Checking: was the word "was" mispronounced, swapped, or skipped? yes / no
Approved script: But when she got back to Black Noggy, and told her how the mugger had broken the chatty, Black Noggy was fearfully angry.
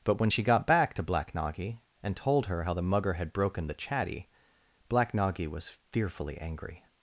no